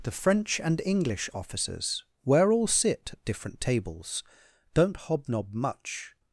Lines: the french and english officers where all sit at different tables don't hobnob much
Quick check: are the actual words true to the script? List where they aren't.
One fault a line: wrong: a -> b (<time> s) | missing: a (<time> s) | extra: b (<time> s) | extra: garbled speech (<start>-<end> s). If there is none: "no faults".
no faults